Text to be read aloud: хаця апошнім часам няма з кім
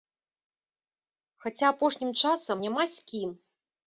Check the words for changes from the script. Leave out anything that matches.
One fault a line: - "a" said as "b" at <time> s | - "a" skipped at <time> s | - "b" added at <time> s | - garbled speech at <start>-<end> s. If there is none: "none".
none